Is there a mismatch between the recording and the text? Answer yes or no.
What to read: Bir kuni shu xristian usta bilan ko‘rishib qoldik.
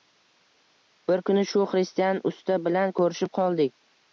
no